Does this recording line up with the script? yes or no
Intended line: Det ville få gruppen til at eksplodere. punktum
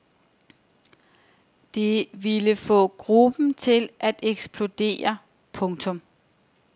yes